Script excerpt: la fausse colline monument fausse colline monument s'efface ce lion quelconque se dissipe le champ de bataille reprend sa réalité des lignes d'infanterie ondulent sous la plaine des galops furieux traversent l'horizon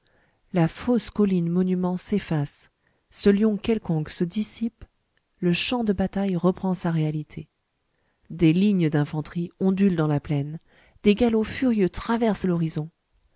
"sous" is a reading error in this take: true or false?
true